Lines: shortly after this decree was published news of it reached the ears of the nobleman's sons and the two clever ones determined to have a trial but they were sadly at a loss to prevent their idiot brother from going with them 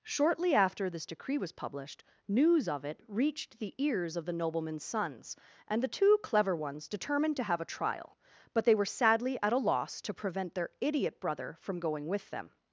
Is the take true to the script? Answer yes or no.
yes